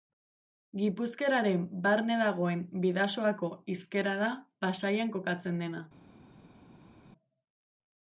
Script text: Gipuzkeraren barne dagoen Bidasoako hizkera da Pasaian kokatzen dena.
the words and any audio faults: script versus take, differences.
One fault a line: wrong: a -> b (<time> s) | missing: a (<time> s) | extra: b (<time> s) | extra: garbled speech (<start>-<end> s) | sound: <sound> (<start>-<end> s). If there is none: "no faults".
no faults